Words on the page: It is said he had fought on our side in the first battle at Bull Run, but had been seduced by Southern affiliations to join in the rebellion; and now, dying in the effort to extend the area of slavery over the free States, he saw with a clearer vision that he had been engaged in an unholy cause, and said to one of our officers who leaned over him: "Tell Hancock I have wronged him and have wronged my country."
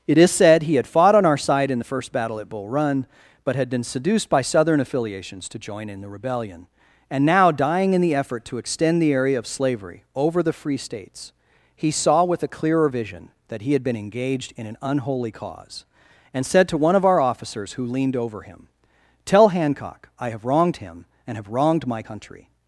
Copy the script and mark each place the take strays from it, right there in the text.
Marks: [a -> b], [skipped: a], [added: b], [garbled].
It is said he had fought on our side in the first battle at Bull Run, but had been seduced by Southern affiliations to join in the rebellion; and now, dying in the effort to extend the area of slavery over the free States, he saw with a clearer vision that he had been engaged in an unholy cause, and said to one of our officers who leaned over him: "Tell Hancock I have wronged him and have wronged my country."